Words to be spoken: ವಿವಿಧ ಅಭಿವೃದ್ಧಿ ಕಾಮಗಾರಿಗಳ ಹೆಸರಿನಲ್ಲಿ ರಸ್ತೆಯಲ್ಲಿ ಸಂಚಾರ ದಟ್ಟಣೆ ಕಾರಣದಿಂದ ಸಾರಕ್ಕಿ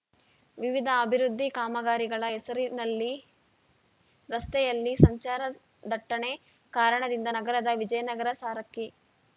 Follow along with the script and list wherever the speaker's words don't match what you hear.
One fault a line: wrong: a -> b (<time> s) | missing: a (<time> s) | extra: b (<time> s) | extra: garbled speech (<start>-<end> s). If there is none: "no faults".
extra: ನಗರದ ವಿಜಯನಗರ (7.4 s)